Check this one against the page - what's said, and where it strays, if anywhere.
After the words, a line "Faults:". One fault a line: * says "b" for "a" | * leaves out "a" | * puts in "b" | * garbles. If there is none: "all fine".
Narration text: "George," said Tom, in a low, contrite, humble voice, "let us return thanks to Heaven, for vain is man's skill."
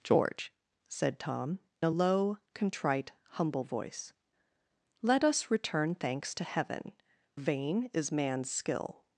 "George," said Tom, a low, contrite, humble voice, "let us return thanks to Heaven, vain is man's skill."
Faults:
* leaves out "in"
* leaves out "for"